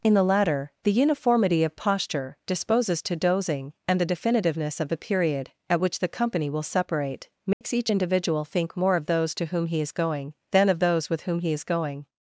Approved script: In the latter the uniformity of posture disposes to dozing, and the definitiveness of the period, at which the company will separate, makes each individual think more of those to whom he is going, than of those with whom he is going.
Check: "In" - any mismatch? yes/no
no